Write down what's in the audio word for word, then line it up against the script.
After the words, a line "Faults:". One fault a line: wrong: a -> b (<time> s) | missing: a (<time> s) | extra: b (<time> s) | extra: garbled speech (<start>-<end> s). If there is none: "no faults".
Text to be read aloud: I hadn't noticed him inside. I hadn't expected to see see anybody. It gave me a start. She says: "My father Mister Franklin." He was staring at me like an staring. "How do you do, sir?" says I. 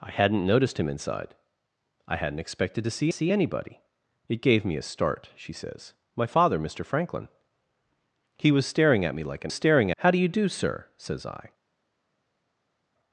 I hadn't noticed him inside. I hadn't expected to see see anybody. It gave me a start. She says: "My father Mister Franklin." He was staring at me like an staring. "How do you do, sir?" says I.
Faults:
no faults